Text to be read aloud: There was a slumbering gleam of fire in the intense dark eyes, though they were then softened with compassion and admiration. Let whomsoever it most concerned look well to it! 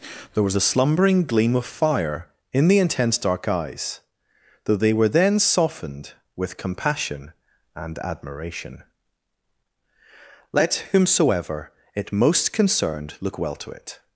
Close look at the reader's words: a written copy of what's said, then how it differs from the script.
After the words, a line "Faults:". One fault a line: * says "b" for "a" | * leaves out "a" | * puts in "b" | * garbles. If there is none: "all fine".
There was a slumbering gleam of fire in the intense dark eyes, though they were then softened with compassion and admiration. Let whomsoever it most concerned look well to it!
Faults:
all fine